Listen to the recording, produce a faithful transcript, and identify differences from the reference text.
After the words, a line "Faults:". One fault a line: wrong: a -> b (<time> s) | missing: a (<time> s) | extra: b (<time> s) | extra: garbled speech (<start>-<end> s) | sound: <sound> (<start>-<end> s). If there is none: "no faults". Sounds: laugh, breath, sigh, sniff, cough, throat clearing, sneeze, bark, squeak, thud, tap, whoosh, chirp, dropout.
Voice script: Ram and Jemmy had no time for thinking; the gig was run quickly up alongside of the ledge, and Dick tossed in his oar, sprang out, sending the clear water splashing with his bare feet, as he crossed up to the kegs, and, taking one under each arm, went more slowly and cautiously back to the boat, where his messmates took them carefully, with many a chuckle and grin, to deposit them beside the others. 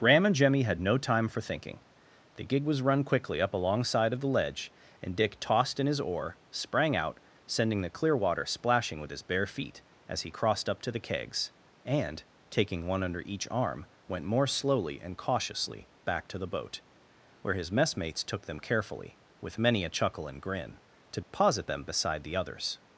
Ram and Jemmy had no time for thinking; the gig was run quickly up alongside of the ledge, and Dick tossed in his oar, sprang out, sending the clear water splashing with his bare feet, as he crossed up to the kegs, and, taking one under each arm, went more slowly and cautiously back to the boat, where his messmates took them carefully, with many a chuckle and grin, to deposit them beside the others.
Faults:
sound: dropout (21.2-21.3 s)